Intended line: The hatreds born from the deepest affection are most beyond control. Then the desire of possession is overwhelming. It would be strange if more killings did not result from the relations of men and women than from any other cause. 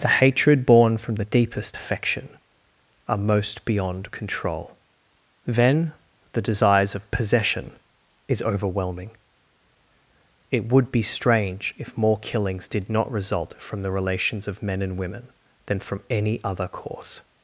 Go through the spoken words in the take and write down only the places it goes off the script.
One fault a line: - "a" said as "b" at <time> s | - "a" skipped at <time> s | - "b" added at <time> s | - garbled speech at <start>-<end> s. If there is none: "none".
- "hatreds" said as "hatred" at 0.1 s
- "desire" said as "desires" at 6.4 s